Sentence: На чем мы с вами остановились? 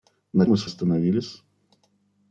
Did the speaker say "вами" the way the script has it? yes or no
no